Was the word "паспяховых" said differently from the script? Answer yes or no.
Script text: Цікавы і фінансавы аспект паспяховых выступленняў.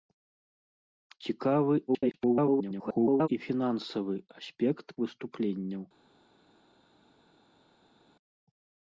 yes